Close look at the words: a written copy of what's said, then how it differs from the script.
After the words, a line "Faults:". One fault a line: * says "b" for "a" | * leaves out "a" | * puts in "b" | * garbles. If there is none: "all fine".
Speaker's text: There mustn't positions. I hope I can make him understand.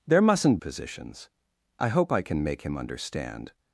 There mustn't positions. I hope I can make him understand.
Faults:
all fine